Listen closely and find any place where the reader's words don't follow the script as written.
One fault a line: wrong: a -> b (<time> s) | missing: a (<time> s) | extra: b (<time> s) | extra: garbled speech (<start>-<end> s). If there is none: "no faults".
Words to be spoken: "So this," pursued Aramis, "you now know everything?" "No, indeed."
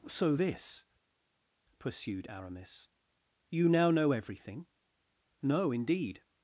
no faults